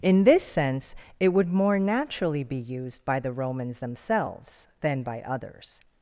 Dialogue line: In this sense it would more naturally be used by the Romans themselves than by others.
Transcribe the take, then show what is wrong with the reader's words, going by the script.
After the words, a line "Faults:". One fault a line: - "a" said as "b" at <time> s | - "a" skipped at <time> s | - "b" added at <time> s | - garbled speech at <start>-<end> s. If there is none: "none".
In this sense it would more naturally be used by the Romans themselves than by others.
Faults:
none